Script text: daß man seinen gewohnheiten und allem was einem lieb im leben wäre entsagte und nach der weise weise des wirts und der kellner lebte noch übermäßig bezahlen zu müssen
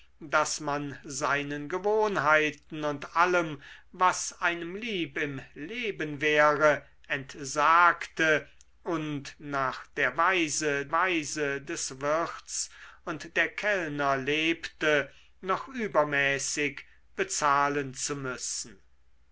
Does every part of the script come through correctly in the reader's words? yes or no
yes